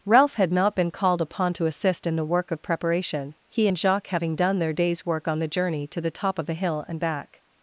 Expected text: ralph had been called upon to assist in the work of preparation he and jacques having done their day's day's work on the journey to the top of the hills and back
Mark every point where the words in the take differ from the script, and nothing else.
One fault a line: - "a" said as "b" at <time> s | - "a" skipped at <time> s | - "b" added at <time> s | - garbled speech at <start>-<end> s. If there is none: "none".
- "not" added at 0.5 s
- "day's" skipped at 5.0 s
- "hills" said as "hill" at 6.5 s